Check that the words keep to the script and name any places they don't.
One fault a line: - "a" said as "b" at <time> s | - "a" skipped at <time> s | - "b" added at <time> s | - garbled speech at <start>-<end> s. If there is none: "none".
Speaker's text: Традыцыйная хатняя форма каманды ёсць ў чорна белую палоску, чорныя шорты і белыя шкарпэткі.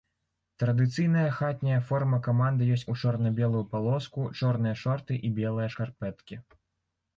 none